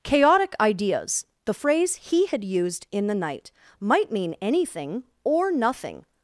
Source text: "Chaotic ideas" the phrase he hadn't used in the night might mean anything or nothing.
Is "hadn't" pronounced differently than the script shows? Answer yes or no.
yes